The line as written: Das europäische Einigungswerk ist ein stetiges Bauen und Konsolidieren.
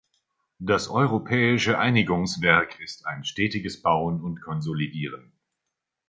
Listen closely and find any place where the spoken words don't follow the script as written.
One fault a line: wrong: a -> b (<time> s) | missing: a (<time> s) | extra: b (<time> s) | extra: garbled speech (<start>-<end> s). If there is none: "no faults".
no faults